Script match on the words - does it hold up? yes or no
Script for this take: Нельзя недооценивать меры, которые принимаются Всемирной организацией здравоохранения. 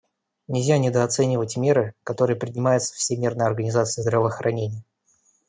yes